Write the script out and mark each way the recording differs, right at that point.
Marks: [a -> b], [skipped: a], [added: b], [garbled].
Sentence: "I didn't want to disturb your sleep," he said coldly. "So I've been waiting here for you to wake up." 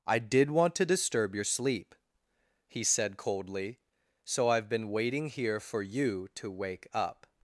"I [didn't -> did] want to disturb your sleep," he said coldly. "So I've been waiting here for you to wake up."